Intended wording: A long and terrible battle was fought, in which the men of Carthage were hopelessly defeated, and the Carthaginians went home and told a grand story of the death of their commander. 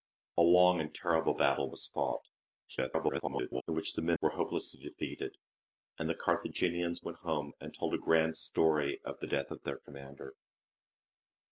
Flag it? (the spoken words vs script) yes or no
yes